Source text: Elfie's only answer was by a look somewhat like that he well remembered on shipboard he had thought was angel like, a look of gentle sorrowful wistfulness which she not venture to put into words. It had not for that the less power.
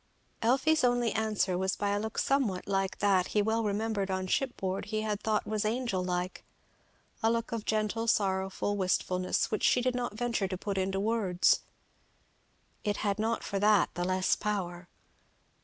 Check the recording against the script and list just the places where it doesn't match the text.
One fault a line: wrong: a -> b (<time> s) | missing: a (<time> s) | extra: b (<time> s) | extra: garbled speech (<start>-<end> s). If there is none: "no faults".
extra: did (9.8 s)